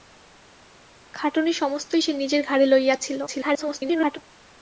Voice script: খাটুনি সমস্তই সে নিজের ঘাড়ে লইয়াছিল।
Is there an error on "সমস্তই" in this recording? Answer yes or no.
no